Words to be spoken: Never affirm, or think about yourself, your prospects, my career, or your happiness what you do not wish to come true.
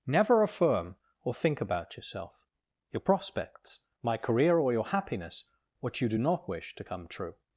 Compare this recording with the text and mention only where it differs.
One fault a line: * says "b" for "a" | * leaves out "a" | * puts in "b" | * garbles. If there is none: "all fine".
all fine